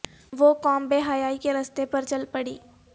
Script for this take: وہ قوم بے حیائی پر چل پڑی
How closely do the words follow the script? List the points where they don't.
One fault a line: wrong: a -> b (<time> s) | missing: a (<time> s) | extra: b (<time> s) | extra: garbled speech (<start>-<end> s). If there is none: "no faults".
extra: کے رستے (1.4 s)